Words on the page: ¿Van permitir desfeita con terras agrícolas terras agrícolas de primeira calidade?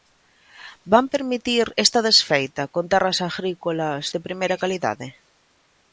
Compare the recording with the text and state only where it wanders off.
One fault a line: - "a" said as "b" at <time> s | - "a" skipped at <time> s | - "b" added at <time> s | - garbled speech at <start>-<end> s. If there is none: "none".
- "esta" added at 1.9 s
- "terras agrícolas" skipped at 4.0 s